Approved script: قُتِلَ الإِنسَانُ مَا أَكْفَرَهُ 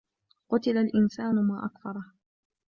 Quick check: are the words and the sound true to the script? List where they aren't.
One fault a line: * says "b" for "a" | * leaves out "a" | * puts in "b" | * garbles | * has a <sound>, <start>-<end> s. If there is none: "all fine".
all fine